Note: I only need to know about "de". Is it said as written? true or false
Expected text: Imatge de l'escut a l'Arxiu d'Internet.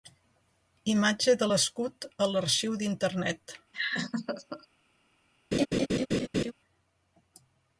true